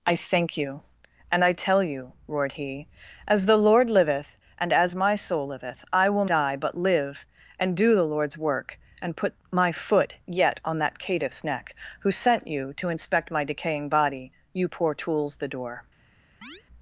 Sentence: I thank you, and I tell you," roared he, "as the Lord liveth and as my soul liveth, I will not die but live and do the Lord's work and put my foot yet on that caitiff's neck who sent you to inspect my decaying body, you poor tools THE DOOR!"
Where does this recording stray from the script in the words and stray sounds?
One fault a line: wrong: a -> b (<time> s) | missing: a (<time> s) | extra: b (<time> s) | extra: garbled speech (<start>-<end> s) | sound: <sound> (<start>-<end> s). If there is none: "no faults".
missing: not (6.2 s)
sound: chirp (16.4-16.6 s)